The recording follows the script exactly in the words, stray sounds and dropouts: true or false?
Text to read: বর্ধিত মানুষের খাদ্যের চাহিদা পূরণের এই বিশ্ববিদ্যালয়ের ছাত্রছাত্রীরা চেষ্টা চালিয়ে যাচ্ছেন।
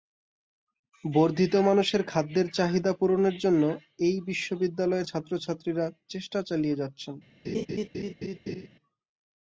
false